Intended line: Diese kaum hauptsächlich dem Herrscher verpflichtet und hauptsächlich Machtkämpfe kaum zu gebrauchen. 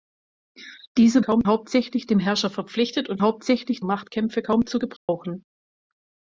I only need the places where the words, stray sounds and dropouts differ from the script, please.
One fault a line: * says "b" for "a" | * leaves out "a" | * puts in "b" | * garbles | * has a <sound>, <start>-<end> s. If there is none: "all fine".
* has a dropout, 5.0-5.1 s